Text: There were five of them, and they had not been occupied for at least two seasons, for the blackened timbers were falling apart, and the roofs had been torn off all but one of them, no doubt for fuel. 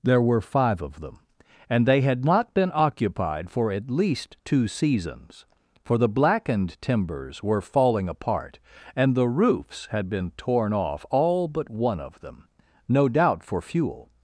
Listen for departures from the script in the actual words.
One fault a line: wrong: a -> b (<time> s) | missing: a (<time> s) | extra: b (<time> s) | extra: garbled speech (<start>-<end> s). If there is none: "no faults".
no faults